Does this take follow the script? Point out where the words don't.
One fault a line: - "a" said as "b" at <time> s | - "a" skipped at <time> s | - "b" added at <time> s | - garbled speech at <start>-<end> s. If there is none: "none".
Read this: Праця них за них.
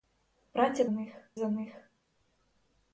none